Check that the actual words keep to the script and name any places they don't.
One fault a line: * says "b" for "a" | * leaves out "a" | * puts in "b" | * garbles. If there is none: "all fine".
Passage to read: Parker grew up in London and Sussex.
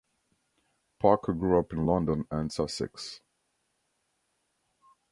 all fine